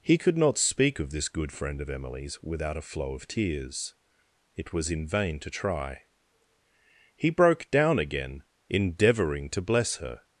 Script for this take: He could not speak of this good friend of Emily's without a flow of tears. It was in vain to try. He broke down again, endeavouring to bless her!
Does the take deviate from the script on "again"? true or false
false